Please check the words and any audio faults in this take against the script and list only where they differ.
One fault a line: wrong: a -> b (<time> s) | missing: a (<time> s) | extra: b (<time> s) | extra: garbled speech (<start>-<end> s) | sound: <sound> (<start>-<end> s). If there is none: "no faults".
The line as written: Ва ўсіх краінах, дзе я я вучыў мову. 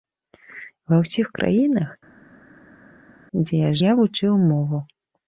no faults